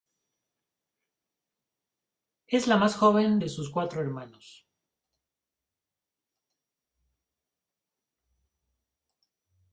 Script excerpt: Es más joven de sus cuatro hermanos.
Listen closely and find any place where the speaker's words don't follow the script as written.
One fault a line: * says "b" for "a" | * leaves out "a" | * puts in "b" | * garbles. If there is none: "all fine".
* puts in "la"